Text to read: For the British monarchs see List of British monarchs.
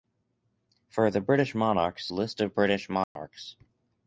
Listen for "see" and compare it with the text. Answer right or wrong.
wrong